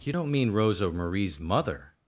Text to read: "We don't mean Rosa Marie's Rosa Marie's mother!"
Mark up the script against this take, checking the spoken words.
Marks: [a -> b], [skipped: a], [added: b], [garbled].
["We -> You] don't mean Rosa Marie's [skipped: Rosa Marie's] mother!"